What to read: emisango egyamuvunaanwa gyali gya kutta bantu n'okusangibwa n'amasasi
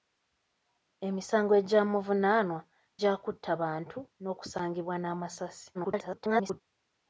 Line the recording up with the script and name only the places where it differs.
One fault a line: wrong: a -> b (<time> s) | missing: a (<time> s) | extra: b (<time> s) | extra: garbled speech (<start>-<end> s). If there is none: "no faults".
missing: gyali (2.6 s)
extra: garbled speech (5.7-6.6 s)